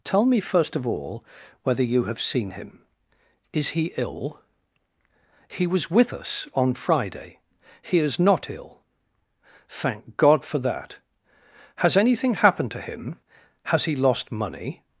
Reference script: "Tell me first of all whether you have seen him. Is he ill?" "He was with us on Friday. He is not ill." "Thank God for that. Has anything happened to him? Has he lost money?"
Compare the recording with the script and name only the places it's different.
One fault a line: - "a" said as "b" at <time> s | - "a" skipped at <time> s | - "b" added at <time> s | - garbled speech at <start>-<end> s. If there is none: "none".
none